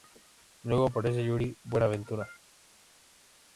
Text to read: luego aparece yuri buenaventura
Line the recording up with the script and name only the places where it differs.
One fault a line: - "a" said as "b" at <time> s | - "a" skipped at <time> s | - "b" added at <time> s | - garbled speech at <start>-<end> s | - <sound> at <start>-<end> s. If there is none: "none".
none